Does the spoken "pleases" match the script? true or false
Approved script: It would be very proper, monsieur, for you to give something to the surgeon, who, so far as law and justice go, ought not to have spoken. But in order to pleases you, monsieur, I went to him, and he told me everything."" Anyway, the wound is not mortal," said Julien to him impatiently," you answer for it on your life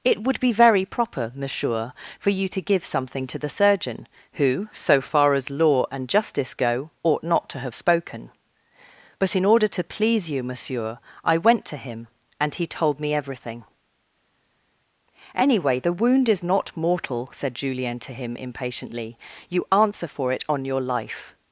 false